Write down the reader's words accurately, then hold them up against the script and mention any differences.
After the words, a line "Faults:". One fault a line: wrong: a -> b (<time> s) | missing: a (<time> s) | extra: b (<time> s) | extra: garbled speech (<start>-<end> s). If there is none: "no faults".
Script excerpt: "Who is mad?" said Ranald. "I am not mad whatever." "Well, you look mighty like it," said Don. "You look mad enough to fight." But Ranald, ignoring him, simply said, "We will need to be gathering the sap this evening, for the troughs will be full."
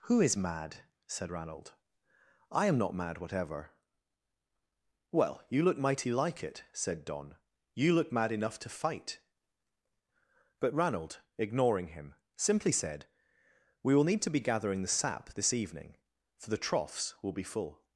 "Who is mad?" said Ranald. "I am not mad whatever." "Well, you look mighty like it," said Don. "You look mad enough to fight." But Ranald, ignoring him, simply said, "We will need to be gathering the sap this evening, for the troughs will be full."
Faults:
no faults